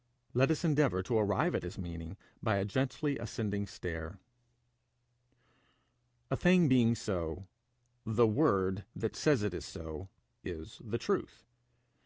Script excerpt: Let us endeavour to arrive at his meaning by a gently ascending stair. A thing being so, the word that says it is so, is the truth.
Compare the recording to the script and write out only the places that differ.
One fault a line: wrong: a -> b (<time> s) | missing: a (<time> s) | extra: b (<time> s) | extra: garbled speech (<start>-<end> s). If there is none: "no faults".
no faults